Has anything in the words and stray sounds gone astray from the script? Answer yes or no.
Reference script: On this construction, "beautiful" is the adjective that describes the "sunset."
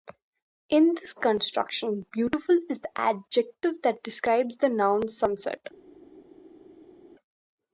yes